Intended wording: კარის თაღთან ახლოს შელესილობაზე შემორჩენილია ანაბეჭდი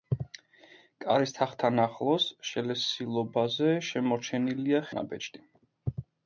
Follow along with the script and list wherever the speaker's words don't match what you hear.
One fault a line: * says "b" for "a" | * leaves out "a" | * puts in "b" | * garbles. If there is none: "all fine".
all fine